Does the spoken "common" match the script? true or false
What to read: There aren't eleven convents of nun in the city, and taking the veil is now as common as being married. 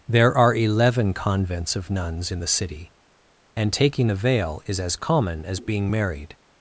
true